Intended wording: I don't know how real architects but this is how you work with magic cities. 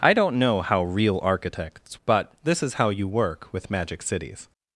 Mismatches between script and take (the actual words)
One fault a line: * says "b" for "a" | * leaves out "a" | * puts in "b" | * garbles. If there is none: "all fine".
all fine